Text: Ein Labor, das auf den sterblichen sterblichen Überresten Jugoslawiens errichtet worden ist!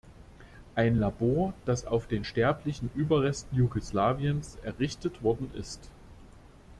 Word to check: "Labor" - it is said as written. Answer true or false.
true